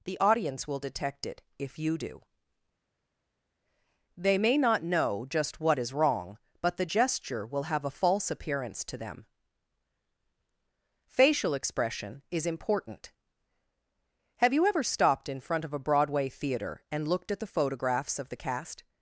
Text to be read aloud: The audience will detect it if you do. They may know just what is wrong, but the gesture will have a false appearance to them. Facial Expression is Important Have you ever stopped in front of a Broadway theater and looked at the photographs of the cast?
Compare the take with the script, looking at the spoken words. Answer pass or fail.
fail